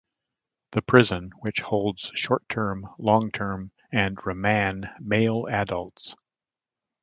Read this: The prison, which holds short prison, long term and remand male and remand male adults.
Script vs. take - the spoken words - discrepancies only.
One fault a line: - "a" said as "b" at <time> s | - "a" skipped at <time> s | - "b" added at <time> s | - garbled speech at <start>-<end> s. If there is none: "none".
- "prison" said as "term" at 2.5 s
- "and remand male" skipped at 5.5 s